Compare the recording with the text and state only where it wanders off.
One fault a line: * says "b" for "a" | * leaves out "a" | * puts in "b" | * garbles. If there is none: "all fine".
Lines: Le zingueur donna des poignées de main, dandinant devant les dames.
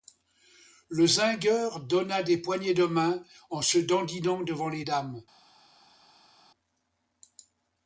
* puts in "en se"